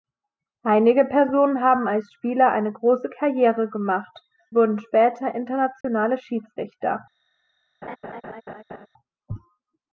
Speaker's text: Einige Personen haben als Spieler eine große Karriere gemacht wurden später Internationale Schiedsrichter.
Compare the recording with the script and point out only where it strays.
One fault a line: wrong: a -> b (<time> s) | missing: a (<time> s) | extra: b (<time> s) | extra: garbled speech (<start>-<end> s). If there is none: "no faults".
no faults